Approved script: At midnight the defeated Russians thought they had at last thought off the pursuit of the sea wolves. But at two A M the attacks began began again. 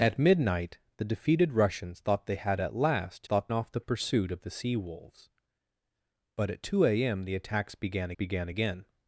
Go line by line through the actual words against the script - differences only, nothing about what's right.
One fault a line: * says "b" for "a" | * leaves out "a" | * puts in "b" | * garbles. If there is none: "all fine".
all fine